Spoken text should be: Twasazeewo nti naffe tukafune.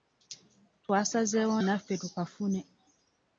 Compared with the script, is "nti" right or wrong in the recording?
wrong